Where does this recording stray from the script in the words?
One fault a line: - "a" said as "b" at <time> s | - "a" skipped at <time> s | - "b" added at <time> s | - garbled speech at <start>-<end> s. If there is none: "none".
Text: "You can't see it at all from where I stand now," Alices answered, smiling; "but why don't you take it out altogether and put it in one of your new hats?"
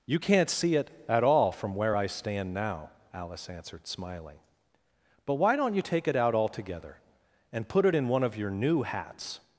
- "Alices" said as "Alice" at 3.1 s